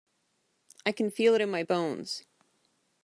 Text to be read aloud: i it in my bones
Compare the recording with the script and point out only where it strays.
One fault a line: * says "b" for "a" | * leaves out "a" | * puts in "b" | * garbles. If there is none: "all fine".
* puts in "can feel"